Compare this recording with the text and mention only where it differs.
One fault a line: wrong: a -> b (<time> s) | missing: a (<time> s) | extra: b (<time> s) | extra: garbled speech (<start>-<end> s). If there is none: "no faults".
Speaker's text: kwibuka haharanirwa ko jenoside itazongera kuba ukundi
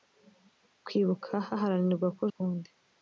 missing: jenoside itazongera kuba (2.2 s)